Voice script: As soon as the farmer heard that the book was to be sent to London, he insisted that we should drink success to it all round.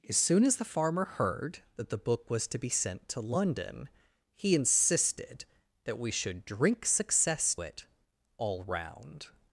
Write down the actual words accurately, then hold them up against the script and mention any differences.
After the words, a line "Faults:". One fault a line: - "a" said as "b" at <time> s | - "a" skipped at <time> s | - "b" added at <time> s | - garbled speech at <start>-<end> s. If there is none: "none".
As soon as the farmer heard that the book was to be sent to London, he insisted that we should drink success it all round.
Faults:
- "to" skipped at 7.5 s